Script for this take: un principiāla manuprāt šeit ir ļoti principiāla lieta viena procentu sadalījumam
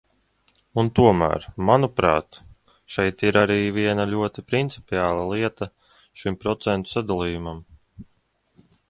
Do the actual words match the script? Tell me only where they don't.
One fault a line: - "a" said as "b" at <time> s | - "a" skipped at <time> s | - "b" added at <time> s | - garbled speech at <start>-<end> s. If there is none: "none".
- "principiāla" said as "tomēr" at 1.0 s
- "arī viena" added at 3.4 s
- "viena" said as "šim" at 6.2 s